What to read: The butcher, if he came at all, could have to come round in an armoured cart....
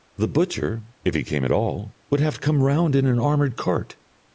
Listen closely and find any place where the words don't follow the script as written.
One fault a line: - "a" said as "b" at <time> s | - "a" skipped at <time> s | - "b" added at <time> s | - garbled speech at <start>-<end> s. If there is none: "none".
- "could" said as "would" at 2.1 s